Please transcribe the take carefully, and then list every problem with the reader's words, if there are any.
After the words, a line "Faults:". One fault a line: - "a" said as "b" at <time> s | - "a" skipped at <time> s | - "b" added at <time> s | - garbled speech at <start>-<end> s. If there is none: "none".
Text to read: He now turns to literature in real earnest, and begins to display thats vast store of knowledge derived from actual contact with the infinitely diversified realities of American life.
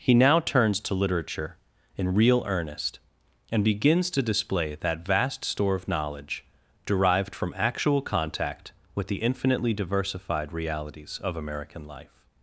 He now turns to literature in real earnest, and begins to display that vast store of knowledge derived from actual contact with the infinitely diversified realities of American life.
Faults:
- "thats" said as "that" at 4.7 s